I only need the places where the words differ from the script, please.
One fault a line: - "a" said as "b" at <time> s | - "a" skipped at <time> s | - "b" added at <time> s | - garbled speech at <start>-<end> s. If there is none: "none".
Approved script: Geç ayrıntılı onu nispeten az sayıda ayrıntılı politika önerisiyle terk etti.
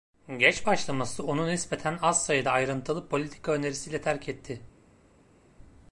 - "ayrıntılı" said as "başlaması" at 0.7 s